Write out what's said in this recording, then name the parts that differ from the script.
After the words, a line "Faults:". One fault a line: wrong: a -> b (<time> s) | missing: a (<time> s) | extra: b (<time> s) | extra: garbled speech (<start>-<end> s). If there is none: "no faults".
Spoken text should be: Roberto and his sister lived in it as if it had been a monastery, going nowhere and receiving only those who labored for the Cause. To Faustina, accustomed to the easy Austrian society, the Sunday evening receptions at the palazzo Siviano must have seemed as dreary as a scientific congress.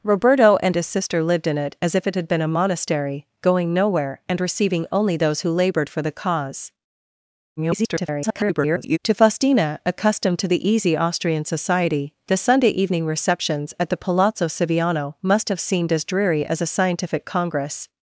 Roberto and his sister lived in it as if it had been a monastery, going nowhere and receiving only those who labored for the Cause. [garbled] To Faustina, accustomed to the easy Austrian society, the Sunday evening receptions at the palazzo Siviano must have seemed as dreary as a scientific congress.
Faults:
extra: garbled speech (7.6-9.0 s)